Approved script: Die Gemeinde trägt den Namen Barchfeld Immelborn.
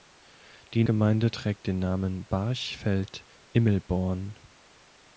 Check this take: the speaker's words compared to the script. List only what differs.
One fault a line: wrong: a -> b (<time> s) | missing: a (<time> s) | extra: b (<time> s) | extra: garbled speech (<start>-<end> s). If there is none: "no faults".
no faults